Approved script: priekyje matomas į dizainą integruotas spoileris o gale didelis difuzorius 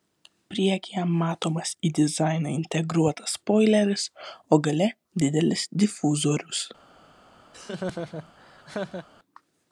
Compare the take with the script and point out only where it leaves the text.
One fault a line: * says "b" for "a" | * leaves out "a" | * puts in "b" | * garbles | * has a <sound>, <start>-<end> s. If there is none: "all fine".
* has a laugh, 7.5-9.1 s